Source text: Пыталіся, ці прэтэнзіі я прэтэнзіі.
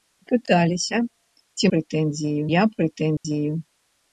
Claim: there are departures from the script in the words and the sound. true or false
true